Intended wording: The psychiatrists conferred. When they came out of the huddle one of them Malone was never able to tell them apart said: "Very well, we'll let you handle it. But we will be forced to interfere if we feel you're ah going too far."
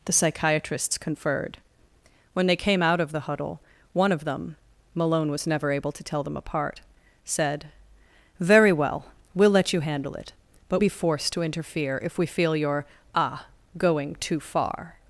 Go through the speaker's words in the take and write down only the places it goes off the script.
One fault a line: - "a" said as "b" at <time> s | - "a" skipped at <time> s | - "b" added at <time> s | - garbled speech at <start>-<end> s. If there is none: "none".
- "we will" skipped at 10.8 s